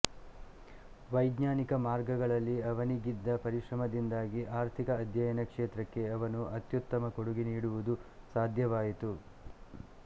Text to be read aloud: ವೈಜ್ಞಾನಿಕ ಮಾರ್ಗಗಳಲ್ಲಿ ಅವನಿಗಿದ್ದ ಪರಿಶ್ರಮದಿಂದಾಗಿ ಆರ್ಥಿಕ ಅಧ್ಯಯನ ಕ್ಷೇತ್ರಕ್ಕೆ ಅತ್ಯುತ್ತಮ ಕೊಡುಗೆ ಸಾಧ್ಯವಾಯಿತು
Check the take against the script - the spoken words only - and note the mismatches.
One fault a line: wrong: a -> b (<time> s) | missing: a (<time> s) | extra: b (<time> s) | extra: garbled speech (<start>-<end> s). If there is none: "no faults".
extra: ಅವನು (6.1 s)
extra: ನೀಡುವುದು (7.5 s)